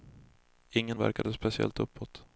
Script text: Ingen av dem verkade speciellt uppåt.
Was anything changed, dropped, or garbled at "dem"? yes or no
yes